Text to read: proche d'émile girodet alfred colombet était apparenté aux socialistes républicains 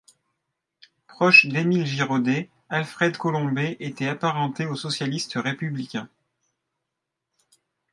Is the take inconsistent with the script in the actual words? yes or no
no